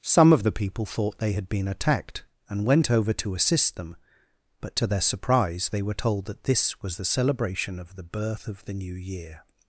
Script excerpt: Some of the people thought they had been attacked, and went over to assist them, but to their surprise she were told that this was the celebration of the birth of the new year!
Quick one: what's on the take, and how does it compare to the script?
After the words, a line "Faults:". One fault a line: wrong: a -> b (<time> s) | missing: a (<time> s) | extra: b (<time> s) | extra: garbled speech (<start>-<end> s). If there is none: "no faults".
Some of the people thought they had been attacked, and went over to assist them, but to their surprise they were told that this was the celebration of the birth of the new year!
Faults:
wrong: she -> they (5.7 s)